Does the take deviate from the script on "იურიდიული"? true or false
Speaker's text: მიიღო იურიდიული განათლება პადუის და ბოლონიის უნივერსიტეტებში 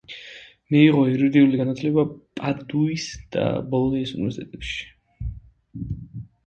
false